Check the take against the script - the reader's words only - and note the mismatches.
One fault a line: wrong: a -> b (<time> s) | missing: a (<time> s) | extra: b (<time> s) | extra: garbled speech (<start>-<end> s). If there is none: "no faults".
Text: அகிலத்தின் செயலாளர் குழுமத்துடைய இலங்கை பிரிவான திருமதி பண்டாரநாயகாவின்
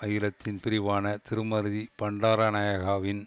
missing: செயலாளர் குழுமத்துடைய இலங்கை (0.6 s)